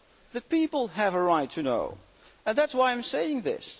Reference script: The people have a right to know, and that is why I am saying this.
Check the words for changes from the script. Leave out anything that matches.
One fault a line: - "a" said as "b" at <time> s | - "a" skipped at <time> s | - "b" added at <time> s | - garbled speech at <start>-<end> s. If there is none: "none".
none